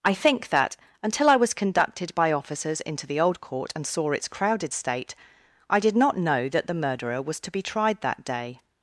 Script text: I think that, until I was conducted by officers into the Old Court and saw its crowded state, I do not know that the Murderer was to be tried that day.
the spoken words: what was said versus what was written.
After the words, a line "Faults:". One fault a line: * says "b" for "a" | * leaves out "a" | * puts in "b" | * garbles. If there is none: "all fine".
I think that, until I was conducted by officers into the Old Court and saw its crowded state, I did not know that the Murderer was to be tried that day.
Faults:
* says "did" for "do"